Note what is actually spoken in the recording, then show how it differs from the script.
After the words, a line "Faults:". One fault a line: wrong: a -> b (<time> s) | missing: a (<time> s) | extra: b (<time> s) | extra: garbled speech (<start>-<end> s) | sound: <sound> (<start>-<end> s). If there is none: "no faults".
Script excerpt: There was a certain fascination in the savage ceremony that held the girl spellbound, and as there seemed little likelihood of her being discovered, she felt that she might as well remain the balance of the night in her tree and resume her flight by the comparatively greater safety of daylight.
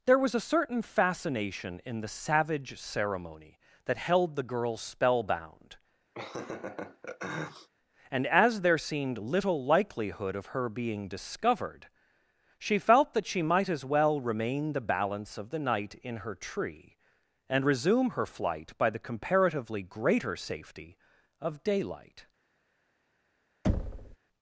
There was a certain fascination in the savage ceremony that held the girl spellbound, and as there seemed little likelihood of her being discovered, she felt that she might as well remain the balance of the night in her tree and resume her flight by the comparatively greater safety of daylight.
Faults:
sound: laugh (6.1-7.7 s)
sound: thud (23.6-24.2 s)